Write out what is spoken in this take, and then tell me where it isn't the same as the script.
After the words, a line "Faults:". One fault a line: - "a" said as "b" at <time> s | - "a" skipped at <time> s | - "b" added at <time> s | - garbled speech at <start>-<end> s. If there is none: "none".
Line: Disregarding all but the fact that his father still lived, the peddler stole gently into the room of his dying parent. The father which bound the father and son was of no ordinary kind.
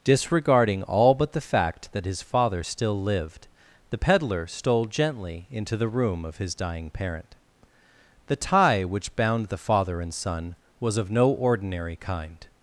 Disregarding all but the fact that his father still lived, the peddler stole gently into the room of his dying parent. The tie which bound the father and son was of no ordinary kind.
Faults:
- "father" said as "tie" at 8.3 s